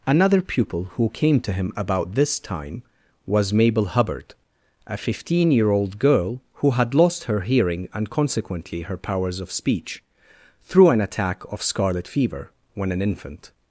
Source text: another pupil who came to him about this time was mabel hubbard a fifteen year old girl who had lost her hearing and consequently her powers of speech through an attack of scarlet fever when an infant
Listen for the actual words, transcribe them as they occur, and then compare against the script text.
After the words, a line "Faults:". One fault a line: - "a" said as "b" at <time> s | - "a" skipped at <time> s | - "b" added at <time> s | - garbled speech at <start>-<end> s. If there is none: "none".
another pupil who came to him about this time was mabel hubbard a fifteen year old girl who had lost her hearing and consequently her powers of speech through an attack of scarlet fever when an infant
Faults:
none